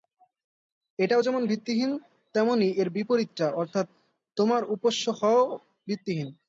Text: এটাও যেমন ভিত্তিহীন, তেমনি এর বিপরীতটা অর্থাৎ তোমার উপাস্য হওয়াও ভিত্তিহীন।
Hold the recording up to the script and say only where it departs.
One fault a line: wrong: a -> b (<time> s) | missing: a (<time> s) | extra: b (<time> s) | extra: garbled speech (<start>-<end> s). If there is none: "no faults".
no faults